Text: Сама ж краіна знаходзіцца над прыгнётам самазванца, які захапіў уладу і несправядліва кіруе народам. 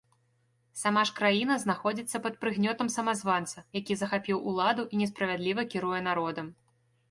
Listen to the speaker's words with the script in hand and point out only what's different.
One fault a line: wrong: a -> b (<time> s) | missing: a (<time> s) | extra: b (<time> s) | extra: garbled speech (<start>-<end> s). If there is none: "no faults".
wrong: над -> пад (2.2 s)